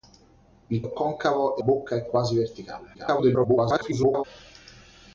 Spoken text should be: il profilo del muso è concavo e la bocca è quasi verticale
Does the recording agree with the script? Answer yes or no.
no